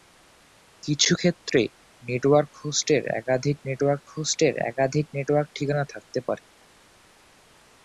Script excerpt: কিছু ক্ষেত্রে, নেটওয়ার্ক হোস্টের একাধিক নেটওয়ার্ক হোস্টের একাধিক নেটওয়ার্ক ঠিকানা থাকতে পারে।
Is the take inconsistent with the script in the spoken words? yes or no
no